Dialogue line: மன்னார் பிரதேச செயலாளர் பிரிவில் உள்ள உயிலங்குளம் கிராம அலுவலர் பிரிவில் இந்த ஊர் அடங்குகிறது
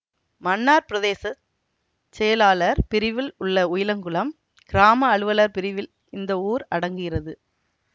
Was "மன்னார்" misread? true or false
false